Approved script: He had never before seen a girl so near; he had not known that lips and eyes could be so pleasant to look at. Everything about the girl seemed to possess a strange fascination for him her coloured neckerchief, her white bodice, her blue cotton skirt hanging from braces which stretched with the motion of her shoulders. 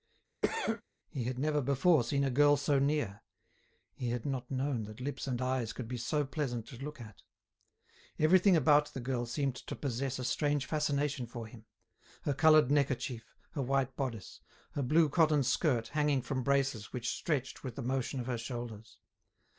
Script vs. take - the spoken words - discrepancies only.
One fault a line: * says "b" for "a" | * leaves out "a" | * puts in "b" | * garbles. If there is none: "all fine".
all fine